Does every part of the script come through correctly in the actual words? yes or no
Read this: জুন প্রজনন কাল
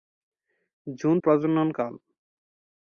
yes